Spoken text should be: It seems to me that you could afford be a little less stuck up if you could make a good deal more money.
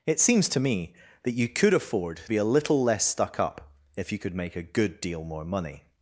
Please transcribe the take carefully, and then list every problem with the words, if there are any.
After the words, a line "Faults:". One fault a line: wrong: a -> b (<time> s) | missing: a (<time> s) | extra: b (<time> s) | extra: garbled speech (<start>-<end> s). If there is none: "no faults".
It seems to me that you could afford be a little less stuck up if you could make a good deal more money.
Faults:
no faults